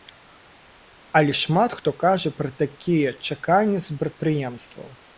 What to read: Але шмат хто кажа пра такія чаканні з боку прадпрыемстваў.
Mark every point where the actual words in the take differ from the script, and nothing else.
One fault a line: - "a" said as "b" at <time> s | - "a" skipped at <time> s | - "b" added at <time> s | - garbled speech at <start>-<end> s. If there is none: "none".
- "боку" skipped at 4.0 s